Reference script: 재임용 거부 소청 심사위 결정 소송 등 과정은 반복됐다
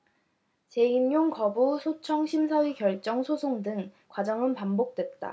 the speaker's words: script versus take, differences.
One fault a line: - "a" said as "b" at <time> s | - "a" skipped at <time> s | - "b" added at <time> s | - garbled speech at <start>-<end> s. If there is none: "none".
none